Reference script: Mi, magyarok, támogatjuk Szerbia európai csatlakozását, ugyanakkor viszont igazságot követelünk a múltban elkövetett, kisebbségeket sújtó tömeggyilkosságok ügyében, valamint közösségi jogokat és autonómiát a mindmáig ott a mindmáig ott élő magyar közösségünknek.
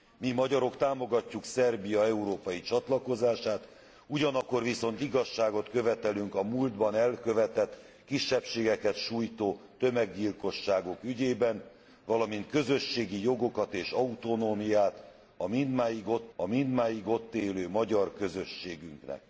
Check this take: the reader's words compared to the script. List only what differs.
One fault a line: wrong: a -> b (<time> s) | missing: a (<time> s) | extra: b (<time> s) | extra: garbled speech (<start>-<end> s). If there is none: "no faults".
no faults